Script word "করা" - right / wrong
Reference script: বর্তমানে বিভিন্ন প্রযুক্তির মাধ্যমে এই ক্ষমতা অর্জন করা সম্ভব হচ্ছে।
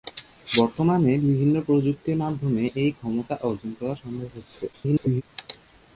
right